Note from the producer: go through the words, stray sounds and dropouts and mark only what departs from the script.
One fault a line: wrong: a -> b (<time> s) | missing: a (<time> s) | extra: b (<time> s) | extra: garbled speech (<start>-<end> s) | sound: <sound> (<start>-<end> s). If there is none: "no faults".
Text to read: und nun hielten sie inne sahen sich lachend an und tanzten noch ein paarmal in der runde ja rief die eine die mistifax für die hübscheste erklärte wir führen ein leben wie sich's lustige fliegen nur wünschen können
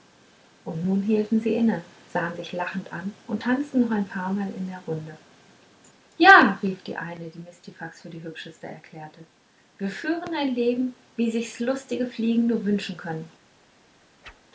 sound: whoosh (14.2-14.4 s)